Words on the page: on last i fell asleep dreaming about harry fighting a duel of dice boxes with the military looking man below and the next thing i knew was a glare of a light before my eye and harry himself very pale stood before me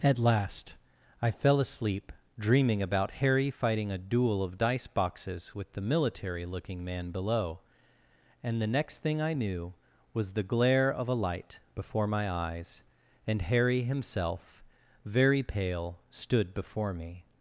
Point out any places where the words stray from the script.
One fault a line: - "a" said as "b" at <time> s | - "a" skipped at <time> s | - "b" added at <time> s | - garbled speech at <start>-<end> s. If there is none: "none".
- "on" said as "at" at 0.0 s
- "a" said as "the" at 10.3 s
- "eye" said as "eyes" at 12.3 s